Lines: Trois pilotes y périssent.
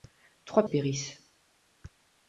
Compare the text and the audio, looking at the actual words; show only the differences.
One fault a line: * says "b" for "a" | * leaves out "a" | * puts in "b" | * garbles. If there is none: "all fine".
* leaves out "pilotes"